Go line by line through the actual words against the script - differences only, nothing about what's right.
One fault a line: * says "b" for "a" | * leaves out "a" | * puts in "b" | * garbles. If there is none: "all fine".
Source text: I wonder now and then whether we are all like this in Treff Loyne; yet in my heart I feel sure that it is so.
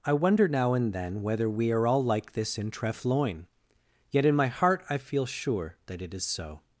all fine